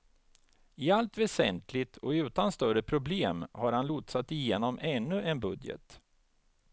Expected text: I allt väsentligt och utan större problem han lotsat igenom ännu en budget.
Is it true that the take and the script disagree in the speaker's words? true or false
true